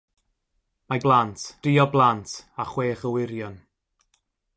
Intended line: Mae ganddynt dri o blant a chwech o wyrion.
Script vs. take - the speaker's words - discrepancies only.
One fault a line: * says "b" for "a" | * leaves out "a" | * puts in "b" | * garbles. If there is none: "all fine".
* says "blant" for "ganddynt"